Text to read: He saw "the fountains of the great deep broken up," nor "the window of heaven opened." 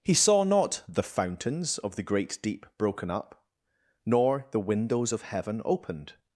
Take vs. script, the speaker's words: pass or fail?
fail